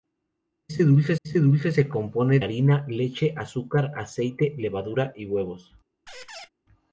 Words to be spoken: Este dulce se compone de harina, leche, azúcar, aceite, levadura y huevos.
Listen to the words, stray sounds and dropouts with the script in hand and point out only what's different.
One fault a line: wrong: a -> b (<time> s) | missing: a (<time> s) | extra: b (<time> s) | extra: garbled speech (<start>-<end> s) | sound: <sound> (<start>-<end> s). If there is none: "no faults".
extra: este dulce (1.2 s)
missing: de (2.4 s)
sound: squeak (6.1-6.5 s)